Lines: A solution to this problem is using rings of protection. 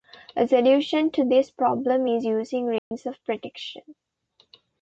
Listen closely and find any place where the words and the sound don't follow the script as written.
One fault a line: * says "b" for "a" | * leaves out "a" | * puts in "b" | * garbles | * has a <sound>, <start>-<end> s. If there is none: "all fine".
* has a dropout, 2.8-2.9 s